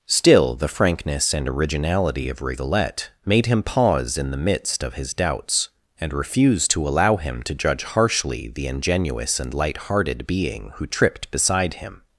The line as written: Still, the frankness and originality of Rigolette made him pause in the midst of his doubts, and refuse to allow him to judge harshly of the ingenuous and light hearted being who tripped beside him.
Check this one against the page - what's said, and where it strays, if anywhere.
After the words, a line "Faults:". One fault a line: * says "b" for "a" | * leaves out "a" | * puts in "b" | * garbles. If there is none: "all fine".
Still, the frankness and originality of Rigolette made him pause in the midst of his doubts, and refuse to allow him to judge harshly the ingenuous and light hearted being who tripped beside him.
Faults:
* leaves out "of"